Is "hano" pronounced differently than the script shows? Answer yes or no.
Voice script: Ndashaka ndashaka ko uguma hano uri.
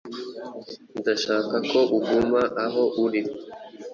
yes